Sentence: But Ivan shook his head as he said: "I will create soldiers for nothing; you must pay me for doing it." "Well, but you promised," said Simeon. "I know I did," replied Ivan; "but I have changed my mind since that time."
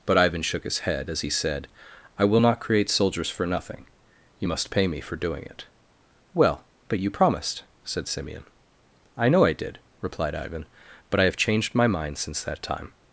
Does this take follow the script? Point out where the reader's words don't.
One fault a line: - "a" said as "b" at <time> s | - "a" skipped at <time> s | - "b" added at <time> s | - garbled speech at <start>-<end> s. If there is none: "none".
- "not" added at 2.4 s